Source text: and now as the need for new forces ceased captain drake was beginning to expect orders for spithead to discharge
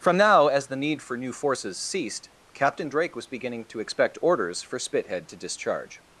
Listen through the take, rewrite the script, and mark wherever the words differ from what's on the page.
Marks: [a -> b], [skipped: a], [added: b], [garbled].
[and -> from] now as the need for new forces ceased captain drake was beginning to expect orders for spithead to discharge